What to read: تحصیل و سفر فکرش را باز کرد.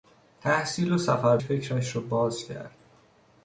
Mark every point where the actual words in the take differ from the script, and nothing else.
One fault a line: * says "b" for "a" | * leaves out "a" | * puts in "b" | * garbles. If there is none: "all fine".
all fine